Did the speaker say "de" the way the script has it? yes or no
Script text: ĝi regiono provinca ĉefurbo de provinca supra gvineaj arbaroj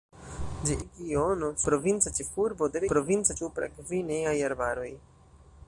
yes